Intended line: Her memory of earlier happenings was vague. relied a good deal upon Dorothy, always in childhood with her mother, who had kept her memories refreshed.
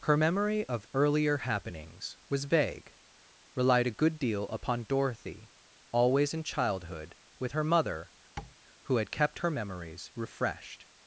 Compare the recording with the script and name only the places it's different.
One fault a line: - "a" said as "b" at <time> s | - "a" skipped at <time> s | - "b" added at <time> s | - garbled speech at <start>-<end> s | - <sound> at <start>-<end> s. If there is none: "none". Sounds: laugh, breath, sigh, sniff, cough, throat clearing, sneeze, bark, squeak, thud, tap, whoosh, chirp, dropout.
- tap at 8.4-8.6 s